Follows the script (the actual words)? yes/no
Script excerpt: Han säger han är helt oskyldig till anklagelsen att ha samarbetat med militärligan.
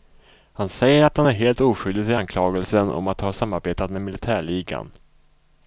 no